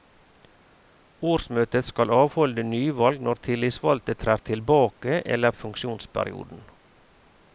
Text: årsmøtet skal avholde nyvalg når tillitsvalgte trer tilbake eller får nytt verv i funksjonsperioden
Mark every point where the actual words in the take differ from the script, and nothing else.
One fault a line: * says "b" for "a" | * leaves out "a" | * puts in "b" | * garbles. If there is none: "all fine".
* leaves out "får nytt verv"